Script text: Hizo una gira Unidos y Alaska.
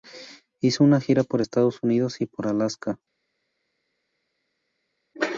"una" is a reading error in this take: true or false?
false